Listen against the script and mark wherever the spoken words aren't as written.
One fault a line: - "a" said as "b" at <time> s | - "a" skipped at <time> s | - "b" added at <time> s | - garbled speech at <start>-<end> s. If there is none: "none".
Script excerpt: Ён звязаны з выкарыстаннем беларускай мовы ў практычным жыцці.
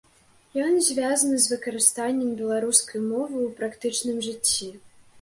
none